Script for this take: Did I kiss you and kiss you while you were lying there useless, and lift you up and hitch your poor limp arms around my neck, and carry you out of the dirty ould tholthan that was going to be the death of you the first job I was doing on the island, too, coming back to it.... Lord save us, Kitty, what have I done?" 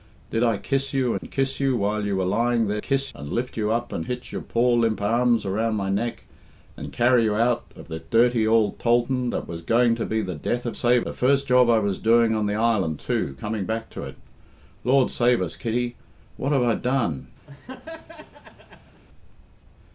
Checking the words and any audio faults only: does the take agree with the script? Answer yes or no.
no